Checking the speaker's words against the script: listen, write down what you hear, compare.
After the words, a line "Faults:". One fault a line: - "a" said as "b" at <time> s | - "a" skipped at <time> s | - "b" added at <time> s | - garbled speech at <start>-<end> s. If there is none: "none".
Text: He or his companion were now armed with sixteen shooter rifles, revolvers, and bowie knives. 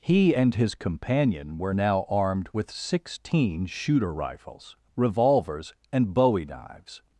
He and his companion were now armed with sixteen shooter rifles, revolvers, and bowie knives.
Faults:
- "or" said as "and" at 0.3 s